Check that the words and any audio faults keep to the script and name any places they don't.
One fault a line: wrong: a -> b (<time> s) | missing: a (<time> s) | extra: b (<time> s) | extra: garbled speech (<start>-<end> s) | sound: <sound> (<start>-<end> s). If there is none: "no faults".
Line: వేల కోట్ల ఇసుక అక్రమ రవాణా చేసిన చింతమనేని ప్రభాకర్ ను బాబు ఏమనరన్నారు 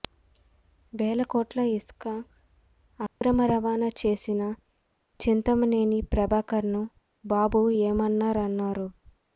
sound: dropout (3.1-3.2 s)